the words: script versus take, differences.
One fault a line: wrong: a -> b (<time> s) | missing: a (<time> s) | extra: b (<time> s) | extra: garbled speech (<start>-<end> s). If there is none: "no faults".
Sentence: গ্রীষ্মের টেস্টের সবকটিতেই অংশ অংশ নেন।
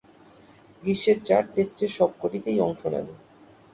extra: চার (1.3 s)
missing: অংশ (2.8 s)